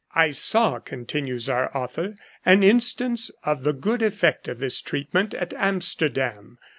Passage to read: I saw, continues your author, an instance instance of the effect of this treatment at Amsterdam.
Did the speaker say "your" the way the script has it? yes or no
no